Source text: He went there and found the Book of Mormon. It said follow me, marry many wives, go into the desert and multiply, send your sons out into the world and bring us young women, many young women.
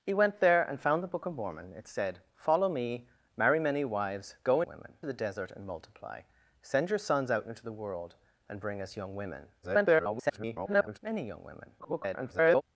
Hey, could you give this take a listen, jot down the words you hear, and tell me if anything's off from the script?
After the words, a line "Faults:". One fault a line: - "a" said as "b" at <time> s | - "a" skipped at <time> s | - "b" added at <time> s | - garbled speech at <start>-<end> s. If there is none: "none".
He went there and found the Book of Mormon. It said follow me, marry many wives, go women the desert and multiply, send your sons out into the world and bring us young women, [garbled] many young women. [garbled]
Faults:
- "into" said as "women" at 4.7 s
- garbled speech at 9.6-11.0 s
- garbled speech at 11.8-12.6 s